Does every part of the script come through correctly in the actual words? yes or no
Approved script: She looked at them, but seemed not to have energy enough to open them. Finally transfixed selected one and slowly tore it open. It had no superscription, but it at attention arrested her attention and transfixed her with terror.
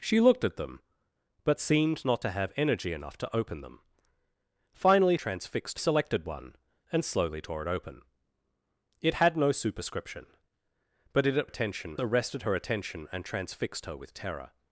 yes